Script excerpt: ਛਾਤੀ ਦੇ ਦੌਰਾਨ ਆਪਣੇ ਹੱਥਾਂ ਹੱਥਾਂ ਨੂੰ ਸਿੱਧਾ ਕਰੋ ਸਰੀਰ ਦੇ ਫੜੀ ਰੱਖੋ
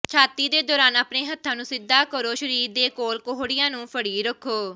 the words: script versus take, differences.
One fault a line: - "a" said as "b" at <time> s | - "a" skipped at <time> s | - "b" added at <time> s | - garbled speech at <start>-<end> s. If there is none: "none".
- "ਹੱਥਾਂ" skipped at 1.6 s
- "ਕੋਲ ਕੋਹੜੀਆਂ ਨੂੰ" added at 2.9 s